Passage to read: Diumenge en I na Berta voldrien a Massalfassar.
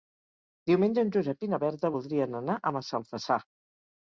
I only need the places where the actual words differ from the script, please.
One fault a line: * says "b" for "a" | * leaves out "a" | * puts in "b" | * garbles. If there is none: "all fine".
* puts in "Josep"
* puts in "anar"